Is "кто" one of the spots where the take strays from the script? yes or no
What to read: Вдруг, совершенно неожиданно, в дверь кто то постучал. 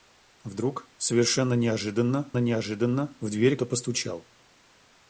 yes